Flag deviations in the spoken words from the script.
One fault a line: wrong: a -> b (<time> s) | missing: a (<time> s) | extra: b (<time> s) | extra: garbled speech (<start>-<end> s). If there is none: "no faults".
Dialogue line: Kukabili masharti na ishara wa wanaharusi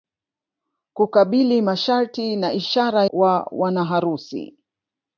no faults